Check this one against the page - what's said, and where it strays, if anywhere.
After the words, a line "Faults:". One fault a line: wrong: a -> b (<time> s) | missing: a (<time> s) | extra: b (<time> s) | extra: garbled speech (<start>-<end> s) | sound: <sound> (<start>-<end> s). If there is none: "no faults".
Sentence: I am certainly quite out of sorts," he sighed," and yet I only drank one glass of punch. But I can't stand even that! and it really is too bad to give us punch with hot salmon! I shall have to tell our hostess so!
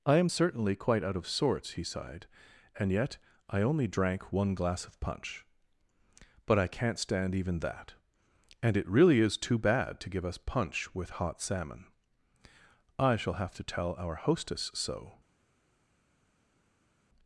I am certainly quite out of sorts," he sighed," and yet I only drank one glass of punch. But I can't stand even that! and it really is too bad to give us punch with hot salmon! I shall have to tell our hostess so!
Faults:
no faults